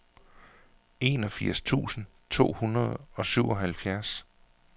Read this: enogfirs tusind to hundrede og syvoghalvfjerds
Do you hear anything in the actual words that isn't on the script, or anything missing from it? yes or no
no